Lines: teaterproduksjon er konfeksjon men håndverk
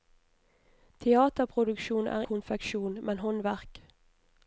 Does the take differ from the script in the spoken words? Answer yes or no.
no